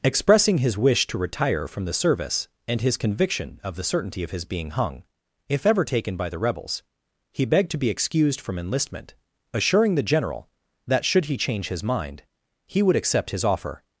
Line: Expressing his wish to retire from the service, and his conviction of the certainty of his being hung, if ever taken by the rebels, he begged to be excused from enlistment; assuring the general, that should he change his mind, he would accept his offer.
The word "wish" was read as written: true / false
true